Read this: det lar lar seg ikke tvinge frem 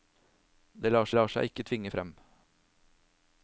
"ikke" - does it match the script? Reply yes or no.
yes